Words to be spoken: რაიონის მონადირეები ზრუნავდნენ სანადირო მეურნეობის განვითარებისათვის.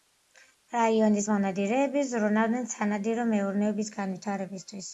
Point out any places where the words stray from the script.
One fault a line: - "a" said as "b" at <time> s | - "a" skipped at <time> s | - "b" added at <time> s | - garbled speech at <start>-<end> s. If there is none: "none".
none